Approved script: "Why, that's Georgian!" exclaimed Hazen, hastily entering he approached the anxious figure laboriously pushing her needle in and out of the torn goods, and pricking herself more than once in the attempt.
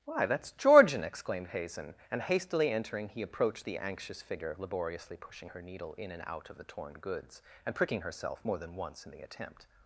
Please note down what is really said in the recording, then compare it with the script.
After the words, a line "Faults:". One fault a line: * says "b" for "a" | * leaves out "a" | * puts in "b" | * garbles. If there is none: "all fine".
"Why, that's Georgian!" exclaimed Hazen, and hastily entering he approached the anxious figure laboriously pushing her needle in and out of the torn goods, and pricking herself more than once in the attempt.
Faults:
* puts in "and"